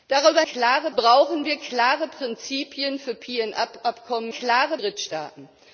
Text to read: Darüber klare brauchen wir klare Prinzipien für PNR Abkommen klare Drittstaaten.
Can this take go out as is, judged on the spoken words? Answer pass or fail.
pass